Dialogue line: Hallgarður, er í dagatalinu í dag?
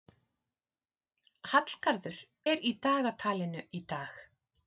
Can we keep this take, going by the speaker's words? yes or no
yes